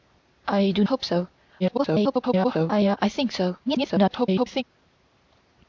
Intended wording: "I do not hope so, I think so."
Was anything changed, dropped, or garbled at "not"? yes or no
yes